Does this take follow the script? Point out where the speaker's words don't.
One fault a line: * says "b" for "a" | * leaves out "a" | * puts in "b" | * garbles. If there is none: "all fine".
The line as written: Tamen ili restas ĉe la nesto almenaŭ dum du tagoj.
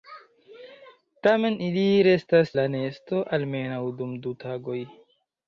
* leaves out "ĉe"